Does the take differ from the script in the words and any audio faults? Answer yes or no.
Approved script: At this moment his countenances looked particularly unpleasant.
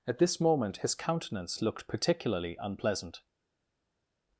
yes